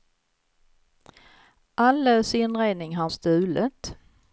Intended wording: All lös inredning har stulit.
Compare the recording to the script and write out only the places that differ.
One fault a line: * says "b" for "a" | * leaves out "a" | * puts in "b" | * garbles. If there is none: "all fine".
all fine